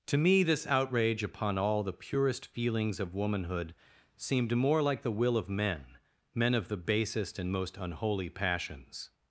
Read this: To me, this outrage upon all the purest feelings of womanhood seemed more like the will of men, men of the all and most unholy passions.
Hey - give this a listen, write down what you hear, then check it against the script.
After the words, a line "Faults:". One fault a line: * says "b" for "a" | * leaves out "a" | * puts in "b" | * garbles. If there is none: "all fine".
To me, this outrage upon all the purest feelings of womanhood seemed more like the will of men, men of the basest and most unholy passions.
Faults:
* says "basest" for "all"